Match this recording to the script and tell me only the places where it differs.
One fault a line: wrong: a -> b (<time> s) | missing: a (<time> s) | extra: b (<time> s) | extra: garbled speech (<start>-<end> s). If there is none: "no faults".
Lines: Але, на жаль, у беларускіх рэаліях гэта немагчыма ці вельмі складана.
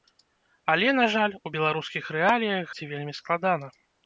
missing: гэта немагчыма (2.7 s)